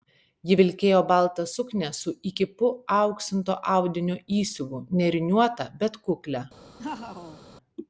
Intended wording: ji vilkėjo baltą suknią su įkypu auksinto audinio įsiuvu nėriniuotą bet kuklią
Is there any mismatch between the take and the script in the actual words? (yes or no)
no